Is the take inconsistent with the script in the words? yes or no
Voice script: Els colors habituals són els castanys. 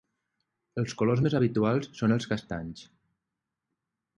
yes